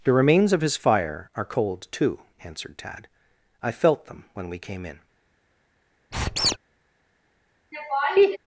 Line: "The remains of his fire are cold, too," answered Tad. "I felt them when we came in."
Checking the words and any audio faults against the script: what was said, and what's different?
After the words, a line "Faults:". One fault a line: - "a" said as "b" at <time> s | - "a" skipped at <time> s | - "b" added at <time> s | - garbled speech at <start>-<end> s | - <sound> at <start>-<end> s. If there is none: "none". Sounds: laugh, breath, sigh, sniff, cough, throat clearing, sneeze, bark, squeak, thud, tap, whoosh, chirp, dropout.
"The remains of his fire are cold, too," answered Tad. "I felt them when we came in."
Faults:
- squeak at 6.1-6.6 s
- laugh at 7.7-8.4 s